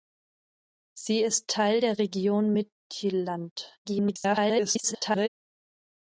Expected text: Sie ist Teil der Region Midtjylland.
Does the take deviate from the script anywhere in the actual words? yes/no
yes